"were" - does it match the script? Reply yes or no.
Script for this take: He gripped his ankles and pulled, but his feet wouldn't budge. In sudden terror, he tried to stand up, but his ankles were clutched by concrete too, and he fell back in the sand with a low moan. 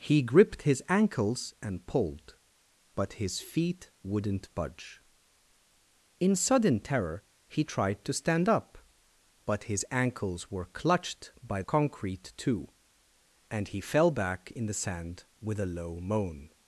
yes